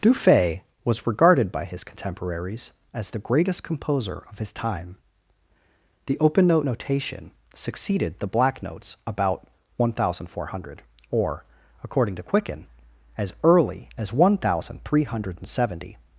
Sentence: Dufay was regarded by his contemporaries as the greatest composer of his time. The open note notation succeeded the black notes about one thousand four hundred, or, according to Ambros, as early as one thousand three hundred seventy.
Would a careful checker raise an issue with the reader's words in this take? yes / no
yes